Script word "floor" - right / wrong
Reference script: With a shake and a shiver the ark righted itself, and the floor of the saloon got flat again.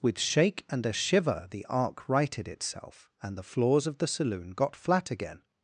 wrong